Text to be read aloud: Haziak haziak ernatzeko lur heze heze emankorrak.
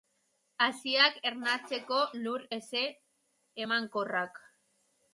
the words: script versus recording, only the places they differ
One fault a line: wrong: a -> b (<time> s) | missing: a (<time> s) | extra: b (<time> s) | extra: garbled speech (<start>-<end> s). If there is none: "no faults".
missing: haziak (1.2 s)
missing: heze (2.9 s)